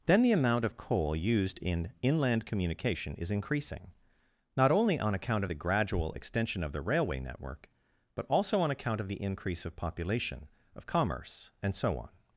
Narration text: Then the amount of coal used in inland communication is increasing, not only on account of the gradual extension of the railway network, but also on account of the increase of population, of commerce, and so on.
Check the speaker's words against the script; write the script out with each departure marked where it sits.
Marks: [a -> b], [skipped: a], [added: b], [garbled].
Then the amount of coal used in inland communication is increasing, not only on account of the gradual extension of the railway network, but also on account of the increase of population, of commerce, and so on.